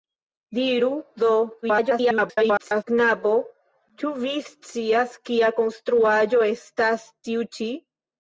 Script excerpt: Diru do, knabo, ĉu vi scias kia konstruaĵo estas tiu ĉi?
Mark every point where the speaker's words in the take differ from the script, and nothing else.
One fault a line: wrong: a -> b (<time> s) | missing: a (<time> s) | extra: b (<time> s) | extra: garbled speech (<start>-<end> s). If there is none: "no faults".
extra: garbled speech (1.6-2.8 s)